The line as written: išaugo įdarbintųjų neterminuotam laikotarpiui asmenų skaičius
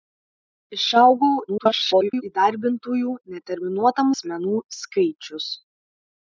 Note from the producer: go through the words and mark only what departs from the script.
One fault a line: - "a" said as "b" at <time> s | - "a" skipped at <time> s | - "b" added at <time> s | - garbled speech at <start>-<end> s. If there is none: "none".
- garbled speech at 1.5-2.2 s
- "laikotarpiui" skipped at 4.1 s